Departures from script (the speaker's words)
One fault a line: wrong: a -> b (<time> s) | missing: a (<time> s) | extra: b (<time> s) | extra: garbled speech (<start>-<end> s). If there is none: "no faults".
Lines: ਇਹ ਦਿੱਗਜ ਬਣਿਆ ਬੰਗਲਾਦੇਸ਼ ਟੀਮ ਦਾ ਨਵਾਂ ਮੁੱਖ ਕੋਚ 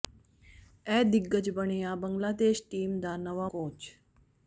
missing: ਮੁੱਖ (3.5 s)